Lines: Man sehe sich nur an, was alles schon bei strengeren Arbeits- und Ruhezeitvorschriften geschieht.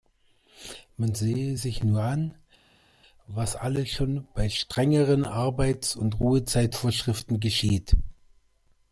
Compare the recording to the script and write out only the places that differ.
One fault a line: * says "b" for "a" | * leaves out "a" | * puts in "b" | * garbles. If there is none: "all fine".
all fine